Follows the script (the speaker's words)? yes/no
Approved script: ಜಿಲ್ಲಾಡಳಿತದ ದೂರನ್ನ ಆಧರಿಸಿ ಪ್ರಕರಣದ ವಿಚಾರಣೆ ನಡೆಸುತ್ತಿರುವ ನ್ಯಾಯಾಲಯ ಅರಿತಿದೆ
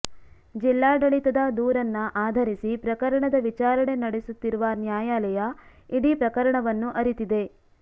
no